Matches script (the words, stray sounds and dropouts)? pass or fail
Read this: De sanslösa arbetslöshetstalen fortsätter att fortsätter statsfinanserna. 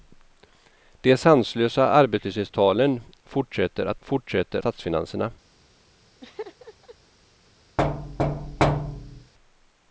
fail